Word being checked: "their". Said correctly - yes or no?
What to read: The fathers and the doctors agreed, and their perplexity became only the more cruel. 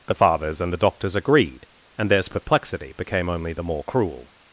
no